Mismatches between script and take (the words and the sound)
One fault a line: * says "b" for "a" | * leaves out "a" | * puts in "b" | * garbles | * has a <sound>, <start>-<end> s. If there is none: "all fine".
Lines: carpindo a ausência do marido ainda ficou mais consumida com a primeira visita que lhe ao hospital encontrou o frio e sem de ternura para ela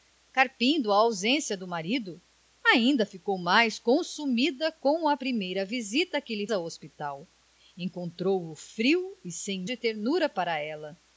all fine